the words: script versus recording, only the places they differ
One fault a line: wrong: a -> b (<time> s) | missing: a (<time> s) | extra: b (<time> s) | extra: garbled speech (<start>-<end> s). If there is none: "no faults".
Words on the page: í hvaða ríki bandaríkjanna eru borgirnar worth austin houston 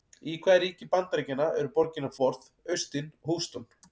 no faults